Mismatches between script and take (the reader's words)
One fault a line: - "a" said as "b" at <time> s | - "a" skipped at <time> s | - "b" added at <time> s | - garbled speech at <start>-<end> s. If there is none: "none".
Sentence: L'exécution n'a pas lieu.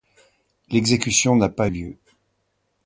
none